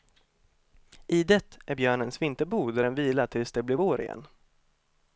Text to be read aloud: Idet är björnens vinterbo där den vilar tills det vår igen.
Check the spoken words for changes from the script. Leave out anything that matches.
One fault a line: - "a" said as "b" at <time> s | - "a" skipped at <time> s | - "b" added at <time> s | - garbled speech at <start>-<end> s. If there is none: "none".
- "blir" added at 3.6 s